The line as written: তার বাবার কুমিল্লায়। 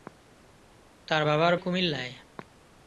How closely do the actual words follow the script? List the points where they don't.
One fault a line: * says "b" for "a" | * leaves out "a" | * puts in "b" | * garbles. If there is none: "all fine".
all fine